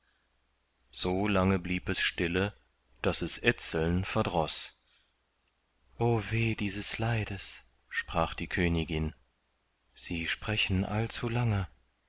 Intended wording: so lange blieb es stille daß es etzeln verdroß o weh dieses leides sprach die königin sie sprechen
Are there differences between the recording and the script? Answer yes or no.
no